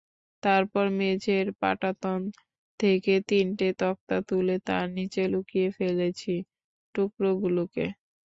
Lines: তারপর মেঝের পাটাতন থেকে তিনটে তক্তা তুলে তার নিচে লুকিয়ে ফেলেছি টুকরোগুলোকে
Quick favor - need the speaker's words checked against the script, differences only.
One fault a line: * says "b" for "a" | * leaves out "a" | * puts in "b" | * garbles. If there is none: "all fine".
all fine